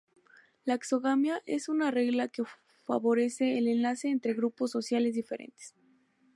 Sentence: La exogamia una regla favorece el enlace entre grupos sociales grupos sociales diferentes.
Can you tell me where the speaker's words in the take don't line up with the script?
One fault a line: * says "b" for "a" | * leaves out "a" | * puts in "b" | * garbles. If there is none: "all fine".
* puts in "es"
* puts in "que"
* leaves out "grupos sociales"